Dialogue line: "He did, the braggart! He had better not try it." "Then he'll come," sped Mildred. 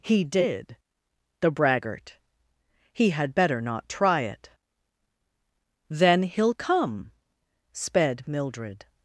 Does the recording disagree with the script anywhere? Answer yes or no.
no